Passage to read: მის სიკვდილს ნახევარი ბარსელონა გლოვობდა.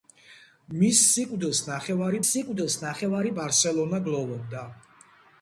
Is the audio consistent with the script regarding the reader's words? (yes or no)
no